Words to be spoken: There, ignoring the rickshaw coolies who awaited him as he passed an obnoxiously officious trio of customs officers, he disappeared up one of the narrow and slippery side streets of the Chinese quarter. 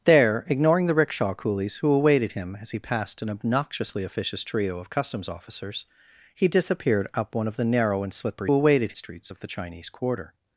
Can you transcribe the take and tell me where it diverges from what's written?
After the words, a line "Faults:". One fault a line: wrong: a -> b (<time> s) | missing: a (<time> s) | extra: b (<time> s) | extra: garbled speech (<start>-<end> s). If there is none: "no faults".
There, ignoring the rickshaw coolies who awaited him as he passed an obnoxiously officious trio of customs officers, he disappeared up one of the narrow and slippery awaited streets of the Chinese quarter.
Faults:
wrong: side -> awaited (8.5 s)